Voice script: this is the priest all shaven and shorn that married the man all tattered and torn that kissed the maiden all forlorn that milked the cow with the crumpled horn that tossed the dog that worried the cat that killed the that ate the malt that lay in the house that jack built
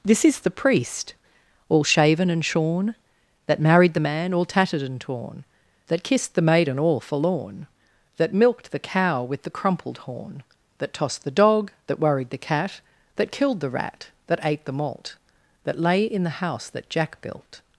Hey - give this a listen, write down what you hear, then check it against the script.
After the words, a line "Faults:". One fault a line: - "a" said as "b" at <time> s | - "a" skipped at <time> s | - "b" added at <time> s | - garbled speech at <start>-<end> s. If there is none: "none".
this is the priest all shaven and shorn that married the man all tattered and torn that kissed the maiden all forlorn that milked the cow with the crumpled horn that tossed the dog that worried the cat that killed the rat that ate the malt that lay in the house that jack built
Faults:
- "rat" added at 13.7 s